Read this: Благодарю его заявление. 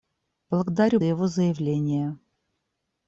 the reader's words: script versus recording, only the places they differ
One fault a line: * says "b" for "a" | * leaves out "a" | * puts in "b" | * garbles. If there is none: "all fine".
all fine